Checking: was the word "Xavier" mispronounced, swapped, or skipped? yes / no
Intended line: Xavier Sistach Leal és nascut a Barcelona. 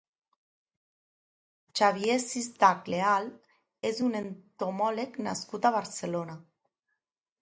no